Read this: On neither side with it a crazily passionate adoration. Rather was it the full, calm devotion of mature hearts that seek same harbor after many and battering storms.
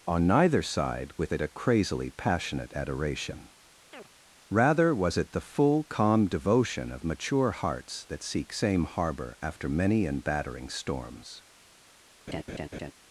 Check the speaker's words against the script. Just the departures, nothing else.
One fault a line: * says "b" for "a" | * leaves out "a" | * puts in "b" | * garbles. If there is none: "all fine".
all fine